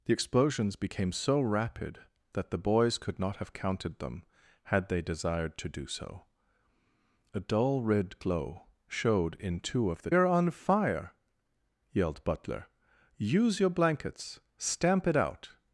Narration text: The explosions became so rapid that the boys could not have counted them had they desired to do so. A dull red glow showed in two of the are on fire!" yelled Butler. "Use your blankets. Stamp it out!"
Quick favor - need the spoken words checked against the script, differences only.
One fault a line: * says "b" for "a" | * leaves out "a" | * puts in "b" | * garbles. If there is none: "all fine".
all fine